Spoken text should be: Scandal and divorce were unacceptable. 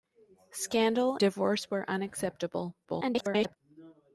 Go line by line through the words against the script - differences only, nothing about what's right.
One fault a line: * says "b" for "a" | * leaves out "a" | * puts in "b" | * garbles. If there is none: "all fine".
* leaves out "and"
* garbles